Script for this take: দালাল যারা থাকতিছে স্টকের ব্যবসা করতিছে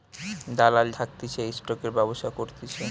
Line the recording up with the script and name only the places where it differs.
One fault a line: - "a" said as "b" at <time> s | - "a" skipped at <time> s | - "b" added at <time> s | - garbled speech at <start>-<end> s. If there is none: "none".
- "যারা" skipped at 0.9 s